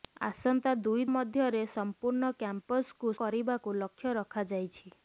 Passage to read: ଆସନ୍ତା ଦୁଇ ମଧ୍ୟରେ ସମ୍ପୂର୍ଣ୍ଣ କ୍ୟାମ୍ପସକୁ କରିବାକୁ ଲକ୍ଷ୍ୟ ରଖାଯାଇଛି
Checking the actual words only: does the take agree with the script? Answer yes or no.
yes